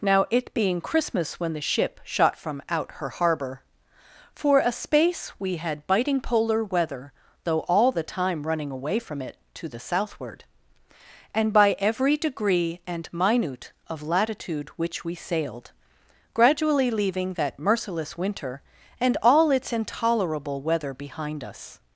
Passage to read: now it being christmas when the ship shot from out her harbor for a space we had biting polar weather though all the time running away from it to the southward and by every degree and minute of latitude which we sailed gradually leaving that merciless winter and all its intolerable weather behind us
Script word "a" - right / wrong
right